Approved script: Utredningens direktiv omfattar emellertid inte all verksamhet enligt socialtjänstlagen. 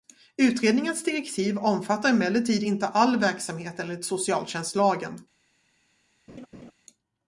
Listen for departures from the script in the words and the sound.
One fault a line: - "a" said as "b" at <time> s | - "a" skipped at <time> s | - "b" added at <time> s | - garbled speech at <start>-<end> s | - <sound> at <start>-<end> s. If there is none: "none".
- laugh at 6.3-6.7 s